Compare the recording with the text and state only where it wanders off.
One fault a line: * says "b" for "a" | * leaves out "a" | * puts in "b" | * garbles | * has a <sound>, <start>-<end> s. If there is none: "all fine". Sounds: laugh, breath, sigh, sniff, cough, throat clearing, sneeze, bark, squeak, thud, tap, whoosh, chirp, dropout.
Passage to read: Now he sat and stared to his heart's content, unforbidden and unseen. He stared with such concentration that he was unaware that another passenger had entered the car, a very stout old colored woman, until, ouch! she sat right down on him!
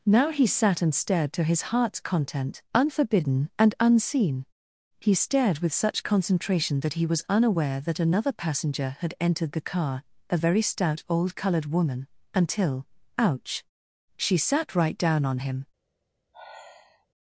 * has a sigh, 16.3-17.1 s